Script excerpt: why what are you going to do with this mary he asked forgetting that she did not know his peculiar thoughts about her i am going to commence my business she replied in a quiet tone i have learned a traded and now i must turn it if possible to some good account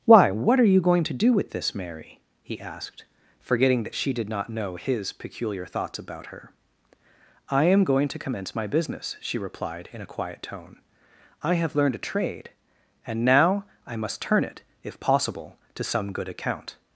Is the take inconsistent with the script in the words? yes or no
yes